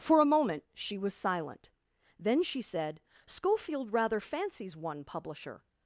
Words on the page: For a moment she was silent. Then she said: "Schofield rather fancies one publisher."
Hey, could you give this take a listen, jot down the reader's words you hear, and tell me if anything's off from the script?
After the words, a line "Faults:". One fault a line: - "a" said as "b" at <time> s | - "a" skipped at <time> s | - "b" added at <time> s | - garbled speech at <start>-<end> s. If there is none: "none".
For a moment she was silent. Then she said: "Schofield rather fancies one publisher."
Faults:
none